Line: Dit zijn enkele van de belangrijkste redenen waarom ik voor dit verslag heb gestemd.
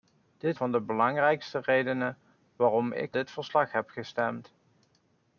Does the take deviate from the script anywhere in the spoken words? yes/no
yes